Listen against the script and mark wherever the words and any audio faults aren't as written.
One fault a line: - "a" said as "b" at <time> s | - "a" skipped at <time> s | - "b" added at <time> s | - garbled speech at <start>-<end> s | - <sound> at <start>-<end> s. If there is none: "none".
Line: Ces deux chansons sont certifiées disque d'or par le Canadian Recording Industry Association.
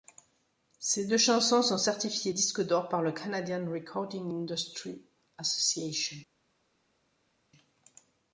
none